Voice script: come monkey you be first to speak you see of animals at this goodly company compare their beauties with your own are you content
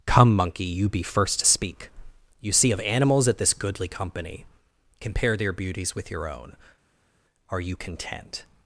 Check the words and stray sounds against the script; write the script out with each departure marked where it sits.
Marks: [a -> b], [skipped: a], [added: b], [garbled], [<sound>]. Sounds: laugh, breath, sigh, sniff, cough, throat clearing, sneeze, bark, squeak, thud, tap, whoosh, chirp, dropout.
come monkey you be first to speak you see of animals at this goodly company compare their beauties with your own are you content